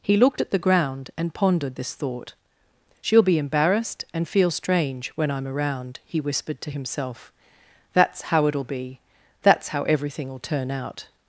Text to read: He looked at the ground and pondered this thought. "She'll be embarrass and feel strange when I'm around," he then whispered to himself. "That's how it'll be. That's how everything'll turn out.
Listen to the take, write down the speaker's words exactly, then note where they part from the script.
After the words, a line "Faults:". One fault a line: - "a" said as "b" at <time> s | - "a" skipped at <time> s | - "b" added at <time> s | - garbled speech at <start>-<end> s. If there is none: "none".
He looked at the ground and pondered this thought. "She'll be embarrassed and feel strange when I'm around," he whispered to himself. "That's how it'll be. That's how everything'll turn out.
Faults:
- "embarrass" said as "embarrassed" at 3.4 s
- "then" skipped at 6.2 s